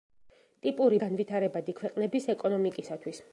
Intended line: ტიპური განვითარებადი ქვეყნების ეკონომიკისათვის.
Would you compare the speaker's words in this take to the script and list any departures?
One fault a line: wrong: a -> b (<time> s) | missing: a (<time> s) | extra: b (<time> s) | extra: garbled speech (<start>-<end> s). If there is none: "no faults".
no faults